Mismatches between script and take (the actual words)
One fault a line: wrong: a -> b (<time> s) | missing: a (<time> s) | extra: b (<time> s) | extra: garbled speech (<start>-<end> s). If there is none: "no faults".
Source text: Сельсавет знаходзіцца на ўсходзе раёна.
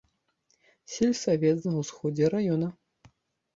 missing: знаходзіцца (1.6 s)